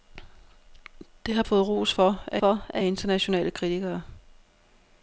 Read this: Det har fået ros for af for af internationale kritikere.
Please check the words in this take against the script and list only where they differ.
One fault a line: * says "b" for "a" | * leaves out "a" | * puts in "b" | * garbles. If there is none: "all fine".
all fine